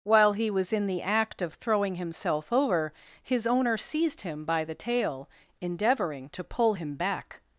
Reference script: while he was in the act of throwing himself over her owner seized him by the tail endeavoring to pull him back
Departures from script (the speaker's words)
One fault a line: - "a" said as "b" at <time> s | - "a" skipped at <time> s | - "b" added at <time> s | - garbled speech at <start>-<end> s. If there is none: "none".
- "her" said as "his" at 3.2 s